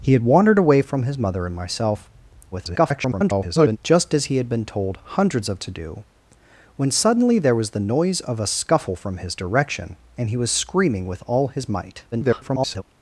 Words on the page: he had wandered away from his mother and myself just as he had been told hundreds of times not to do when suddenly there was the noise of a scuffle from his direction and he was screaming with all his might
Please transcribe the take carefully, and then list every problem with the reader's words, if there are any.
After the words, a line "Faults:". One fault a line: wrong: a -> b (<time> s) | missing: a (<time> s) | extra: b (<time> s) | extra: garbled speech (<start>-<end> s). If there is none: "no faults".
he had wandered away from his mother and myself [garbled] just as he had been told hundreds of to do when suddenly there was the noise of a scuffle from his direction and he was screaming with all his might [garbled]
Faults:
extra: garbled speech (2.5-3.8 s)
missing: times not (5.6 s)
extra: garbled speech (12.1-12.8 s)